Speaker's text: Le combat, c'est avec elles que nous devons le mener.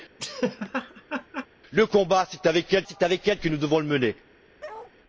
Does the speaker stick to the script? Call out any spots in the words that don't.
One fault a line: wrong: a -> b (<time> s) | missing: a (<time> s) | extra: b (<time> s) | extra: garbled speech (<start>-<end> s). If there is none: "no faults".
extra: c'est avec elles (2.9 s)